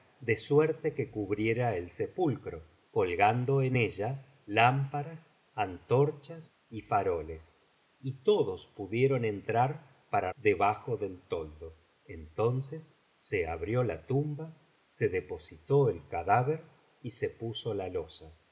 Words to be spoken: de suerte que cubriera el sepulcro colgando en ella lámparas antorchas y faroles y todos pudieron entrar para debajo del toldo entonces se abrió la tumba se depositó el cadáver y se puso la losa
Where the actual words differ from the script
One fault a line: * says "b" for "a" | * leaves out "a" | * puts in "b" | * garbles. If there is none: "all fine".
all fine